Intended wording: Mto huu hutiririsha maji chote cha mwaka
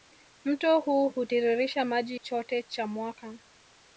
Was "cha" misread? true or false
false